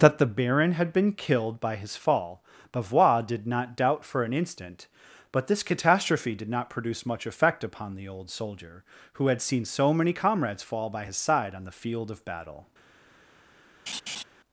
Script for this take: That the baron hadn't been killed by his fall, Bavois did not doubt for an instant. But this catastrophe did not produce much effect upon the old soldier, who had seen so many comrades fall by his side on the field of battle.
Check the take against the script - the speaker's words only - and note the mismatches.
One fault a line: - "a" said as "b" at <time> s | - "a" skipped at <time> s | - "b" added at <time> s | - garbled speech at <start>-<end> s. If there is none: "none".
- "hadn't" said as "had" at 0.7 s